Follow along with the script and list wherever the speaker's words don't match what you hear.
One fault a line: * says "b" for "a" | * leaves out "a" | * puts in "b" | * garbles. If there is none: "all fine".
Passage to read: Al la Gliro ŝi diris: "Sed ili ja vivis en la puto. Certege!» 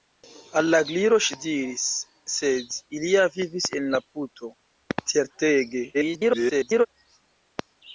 * garbles